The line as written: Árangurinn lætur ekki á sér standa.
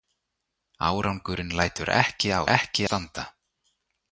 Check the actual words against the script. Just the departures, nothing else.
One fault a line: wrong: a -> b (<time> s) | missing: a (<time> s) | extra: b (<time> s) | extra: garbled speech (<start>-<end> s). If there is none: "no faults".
wrong: sér -> ekki (2.6 s)